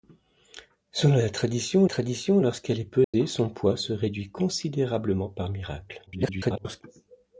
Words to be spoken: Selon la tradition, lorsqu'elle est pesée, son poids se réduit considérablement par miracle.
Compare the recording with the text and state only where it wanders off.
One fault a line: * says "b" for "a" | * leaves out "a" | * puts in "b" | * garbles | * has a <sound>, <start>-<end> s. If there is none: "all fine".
* puts in "tradition"
* has a dropout, 3.0-3.1 s
* garbles